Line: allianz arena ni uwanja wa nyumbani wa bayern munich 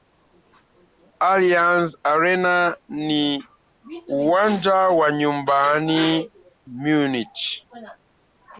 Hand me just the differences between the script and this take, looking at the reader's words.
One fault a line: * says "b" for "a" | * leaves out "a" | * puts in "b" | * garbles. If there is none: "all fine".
* leaves out "wa bayern"